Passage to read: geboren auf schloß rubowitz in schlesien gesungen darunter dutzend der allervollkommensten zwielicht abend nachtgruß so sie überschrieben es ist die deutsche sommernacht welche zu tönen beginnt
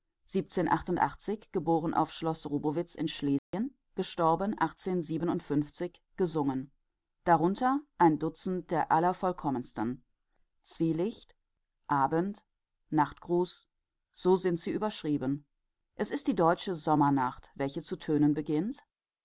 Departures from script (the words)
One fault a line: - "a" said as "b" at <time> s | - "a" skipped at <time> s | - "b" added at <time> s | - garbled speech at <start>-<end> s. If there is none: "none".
- "ein" added at 8.0 s
- "sind" added at 14.4 s